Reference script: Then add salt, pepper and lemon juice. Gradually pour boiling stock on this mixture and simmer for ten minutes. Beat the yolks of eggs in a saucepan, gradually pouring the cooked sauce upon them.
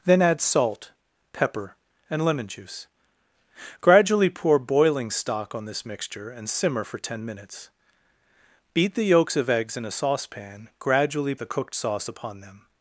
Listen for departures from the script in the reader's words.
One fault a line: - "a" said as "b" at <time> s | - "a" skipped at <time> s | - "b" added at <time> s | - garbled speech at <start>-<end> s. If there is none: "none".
- "pouring" skipped at 11.3 s